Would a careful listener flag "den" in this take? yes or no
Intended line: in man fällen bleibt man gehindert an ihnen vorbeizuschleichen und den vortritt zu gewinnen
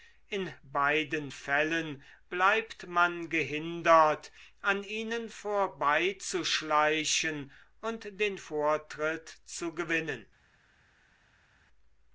no